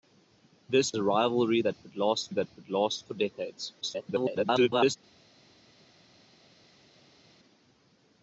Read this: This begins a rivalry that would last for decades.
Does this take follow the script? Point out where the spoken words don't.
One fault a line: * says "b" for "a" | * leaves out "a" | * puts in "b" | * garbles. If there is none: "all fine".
* leaves out "begins"
* puts in "that would last"
* garbles